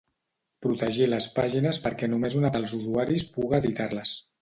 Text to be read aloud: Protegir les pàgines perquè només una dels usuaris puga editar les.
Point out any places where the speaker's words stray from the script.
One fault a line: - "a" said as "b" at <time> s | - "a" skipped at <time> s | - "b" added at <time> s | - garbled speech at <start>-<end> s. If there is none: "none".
none